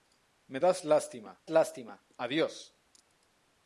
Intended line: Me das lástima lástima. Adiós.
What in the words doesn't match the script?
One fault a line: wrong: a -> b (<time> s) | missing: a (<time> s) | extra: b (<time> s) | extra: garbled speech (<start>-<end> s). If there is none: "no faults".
no faults